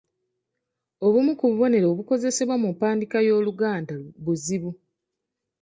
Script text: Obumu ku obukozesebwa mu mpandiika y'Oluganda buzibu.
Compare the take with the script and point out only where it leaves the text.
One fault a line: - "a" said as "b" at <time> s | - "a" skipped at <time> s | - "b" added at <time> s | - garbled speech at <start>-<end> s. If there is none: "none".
- "bubonero" added at 1.5 s